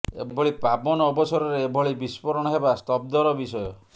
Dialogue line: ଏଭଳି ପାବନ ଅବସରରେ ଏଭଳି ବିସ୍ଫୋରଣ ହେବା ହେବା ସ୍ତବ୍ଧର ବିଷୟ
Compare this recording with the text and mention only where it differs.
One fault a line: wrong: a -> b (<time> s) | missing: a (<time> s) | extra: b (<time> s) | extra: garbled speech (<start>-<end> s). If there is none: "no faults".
missing: ହେବା (2.8 s)